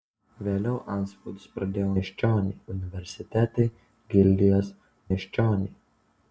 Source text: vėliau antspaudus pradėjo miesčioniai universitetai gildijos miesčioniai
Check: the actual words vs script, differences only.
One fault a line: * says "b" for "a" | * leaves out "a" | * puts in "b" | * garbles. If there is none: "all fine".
all fine